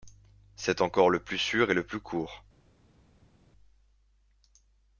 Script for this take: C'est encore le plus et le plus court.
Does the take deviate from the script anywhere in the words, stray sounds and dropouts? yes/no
yes